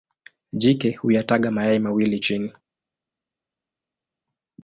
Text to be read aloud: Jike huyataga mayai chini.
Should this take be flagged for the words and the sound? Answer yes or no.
yes